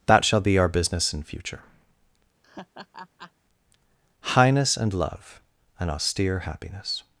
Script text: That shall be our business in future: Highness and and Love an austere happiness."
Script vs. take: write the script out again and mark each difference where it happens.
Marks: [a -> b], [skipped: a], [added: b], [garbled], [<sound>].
That shall be our business in future: [laugh] Highness and [skipped: and] Love an austere happiness."